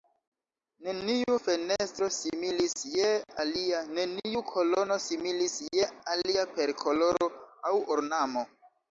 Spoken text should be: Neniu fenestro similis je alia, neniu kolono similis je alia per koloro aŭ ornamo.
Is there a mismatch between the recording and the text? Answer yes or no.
no